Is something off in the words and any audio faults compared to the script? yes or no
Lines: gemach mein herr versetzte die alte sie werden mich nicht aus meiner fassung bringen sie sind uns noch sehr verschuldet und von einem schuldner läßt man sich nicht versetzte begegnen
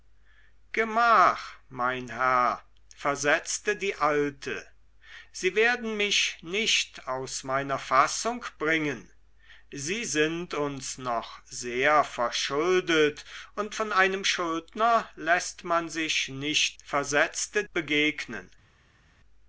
no